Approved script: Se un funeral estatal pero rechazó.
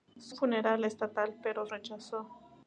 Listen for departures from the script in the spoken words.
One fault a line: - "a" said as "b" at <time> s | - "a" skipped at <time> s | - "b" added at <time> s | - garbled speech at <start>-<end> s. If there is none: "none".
none